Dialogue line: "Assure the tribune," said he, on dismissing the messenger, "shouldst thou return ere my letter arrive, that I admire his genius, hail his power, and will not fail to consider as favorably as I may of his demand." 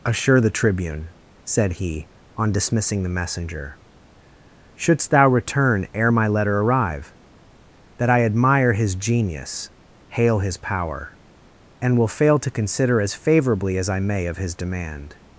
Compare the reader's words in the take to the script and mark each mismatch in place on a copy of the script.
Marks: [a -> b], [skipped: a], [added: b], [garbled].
"Assure the tribune," said he, on dismissing the messenger, "shouldst thou return ere my letter arrive, that I admire his genius, hail his power, and will [skipped: not] fail to consider as favorably as I may of his demand."